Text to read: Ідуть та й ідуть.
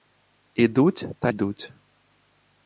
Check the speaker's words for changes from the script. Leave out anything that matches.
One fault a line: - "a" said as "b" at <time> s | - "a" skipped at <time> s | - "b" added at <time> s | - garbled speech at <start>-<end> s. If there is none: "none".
- "й" skipped at 1.3 s